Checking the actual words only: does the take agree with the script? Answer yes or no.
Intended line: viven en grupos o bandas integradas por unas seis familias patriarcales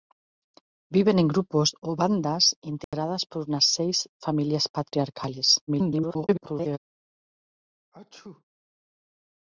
no